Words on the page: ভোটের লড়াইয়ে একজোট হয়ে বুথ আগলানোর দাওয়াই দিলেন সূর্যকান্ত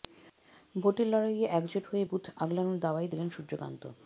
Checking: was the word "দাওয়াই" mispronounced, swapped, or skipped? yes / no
no